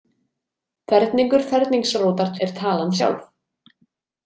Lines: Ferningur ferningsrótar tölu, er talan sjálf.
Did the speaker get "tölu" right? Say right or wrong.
wrong